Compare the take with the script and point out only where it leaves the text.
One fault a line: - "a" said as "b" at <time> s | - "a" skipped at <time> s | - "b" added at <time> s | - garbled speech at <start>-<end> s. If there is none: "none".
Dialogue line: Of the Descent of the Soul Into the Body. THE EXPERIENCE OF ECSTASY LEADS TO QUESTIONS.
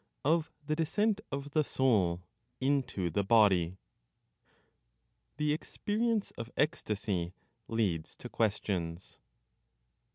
none